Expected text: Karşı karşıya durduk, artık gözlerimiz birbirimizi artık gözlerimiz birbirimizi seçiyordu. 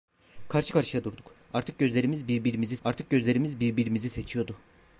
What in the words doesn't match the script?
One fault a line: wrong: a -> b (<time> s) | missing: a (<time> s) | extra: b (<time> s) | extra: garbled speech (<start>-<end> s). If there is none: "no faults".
no faults